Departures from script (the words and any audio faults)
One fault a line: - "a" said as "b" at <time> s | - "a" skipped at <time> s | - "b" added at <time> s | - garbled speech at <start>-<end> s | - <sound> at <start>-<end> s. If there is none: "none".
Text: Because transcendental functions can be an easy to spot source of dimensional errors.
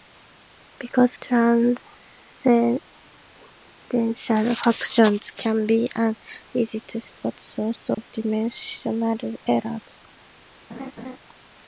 - dropout at 7.9-8.0 s
- laugh at 10.7-11.2 s